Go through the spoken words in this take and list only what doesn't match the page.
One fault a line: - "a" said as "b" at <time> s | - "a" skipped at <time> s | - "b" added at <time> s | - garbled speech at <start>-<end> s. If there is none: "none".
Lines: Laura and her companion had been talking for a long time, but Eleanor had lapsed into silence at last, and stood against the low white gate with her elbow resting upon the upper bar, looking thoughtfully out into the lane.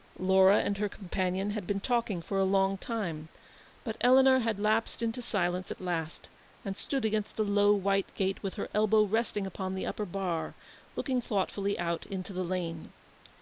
none